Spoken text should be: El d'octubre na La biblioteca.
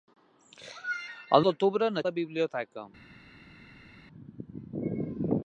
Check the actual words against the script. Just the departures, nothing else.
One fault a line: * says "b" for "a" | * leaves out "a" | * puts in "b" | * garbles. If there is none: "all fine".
all fine